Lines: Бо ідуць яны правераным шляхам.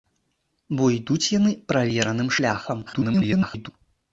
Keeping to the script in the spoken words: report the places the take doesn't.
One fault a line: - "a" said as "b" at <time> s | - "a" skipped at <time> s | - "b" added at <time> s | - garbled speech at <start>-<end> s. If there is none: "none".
- garbled speech at 2.9-3.7 s